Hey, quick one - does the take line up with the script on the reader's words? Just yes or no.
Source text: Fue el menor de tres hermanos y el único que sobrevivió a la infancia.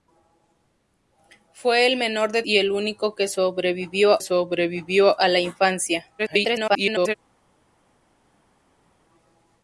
no